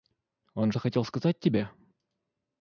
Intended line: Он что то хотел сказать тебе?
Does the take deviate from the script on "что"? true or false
true